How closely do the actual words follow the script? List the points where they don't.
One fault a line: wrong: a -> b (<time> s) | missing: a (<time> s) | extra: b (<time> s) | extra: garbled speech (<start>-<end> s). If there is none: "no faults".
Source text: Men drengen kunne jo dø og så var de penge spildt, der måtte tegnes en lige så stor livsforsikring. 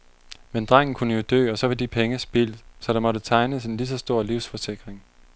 extra: så (2.8 s)